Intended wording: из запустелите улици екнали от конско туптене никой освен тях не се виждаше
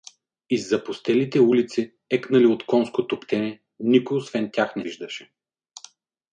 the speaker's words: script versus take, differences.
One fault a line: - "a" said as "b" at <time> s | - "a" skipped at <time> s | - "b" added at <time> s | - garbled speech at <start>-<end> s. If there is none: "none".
- "се" skipped at 4.8 s